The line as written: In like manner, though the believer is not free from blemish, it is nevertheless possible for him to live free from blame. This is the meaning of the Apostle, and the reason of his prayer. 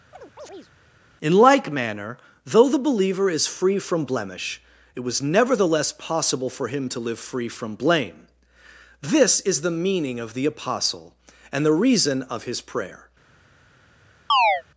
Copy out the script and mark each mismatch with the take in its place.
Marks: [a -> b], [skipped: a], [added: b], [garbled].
In like manner, though the believer is [skipped: not] free from blemish, it [is -> was] nevertheless possible for him to live free from blame. This is the meaning of the Apostle, and the reason of his prayer.